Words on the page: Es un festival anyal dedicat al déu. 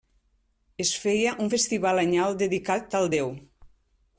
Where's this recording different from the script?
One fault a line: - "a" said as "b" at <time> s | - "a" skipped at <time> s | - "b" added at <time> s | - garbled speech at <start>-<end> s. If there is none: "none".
- "feia" added at 1.0 s